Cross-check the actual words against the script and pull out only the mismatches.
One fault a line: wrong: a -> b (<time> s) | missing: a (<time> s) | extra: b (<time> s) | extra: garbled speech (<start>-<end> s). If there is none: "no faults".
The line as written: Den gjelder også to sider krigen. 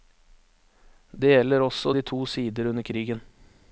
wrong: Den -> Det (1.1 s)
extra: de (1.9 s)
extra: under (2.7 s)